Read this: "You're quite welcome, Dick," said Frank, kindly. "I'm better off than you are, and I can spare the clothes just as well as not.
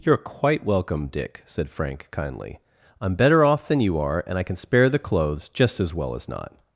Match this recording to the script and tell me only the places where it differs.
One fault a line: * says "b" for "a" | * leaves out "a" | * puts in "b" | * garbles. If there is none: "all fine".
all fine